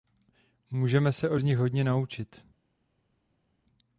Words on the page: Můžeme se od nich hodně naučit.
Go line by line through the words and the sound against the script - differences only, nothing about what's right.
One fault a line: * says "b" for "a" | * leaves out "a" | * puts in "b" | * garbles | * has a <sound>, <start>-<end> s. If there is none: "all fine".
all fine